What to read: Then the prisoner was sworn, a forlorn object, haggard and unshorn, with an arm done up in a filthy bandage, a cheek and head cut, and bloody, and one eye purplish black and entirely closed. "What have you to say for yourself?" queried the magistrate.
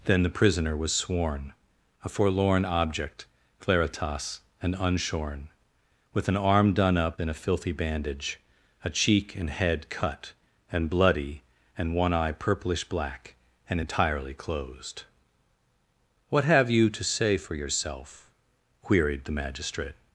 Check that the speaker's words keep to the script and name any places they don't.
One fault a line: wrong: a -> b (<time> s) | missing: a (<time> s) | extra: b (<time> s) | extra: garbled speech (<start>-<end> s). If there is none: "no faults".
wrong: haggard -> claritas (3.6 s)